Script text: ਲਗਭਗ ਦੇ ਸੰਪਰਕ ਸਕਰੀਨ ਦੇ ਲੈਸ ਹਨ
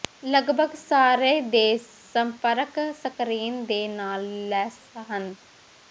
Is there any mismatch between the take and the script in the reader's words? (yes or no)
yes